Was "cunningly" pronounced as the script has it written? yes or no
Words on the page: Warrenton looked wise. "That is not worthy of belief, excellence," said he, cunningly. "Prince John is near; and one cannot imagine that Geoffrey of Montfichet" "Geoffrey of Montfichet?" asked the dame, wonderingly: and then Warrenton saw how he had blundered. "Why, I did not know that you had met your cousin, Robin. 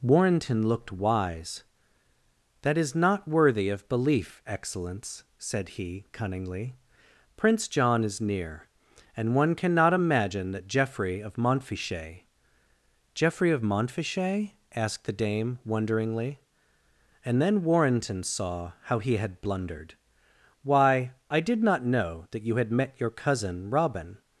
yes